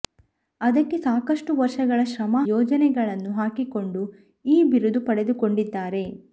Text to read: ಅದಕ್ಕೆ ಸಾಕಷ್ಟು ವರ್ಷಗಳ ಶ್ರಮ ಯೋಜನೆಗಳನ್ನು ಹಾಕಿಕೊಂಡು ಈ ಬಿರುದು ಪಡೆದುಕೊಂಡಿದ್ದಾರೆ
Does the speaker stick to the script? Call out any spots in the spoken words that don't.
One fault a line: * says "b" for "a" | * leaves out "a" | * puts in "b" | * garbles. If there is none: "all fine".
all fine